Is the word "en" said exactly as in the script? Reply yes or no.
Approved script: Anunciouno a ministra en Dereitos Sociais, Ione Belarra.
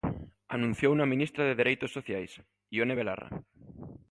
no